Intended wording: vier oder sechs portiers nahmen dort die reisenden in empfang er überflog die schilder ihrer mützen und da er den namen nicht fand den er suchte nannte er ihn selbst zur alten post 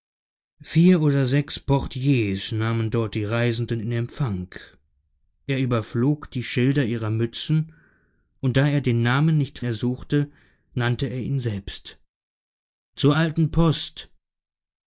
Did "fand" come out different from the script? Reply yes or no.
yes